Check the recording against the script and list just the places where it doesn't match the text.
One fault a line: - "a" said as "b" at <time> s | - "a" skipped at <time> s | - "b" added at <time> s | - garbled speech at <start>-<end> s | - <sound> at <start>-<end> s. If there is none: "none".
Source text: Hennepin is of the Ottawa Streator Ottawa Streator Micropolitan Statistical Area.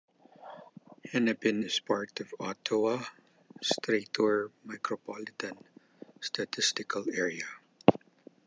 - "part" added at 1.7 s
- "Ottawa Streator" skipped at 4.5 s